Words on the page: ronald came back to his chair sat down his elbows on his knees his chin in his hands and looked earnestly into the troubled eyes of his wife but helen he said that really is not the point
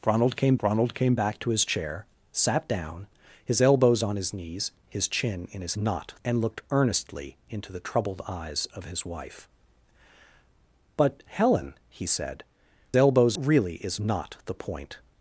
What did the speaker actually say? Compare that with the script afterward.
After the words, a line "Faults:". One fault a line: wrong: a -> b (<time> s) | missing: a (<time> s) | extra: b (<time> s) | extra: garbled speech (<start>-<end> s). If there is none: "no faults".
ronald came ronald came back to his chair sat down his elbows on his knees his chin in his not and looked earnestly into the troubled eyes of his wife but helen he said elbows really is not the point
Faults:
extra: ronald came (0.6 s)
wrong: hands -> not (5.8 s)
wrong: that -> elbows (13.0 s)